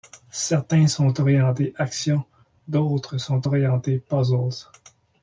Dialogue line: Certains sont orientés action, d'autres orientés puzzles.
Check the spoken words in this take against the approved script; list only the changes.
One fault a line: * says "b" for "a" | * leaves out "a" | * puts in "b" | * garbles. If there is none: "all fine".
* puts in "sont"